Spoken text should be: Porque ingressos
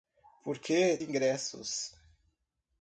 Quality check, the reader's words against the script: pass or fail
pass